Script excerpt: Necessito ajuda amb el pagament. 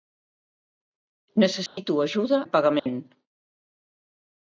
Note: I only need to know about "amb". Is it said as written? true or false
false